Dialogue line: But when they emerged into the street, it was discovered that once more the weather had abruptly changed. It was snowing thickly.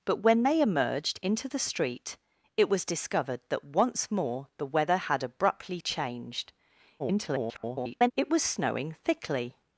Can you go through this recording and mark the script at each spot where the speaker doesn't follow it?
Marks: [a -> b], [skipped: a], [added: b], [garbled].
But when they emerged into the street, it was discovered that once more the weather had abruptly changed. [garbled] It was snowing thickly.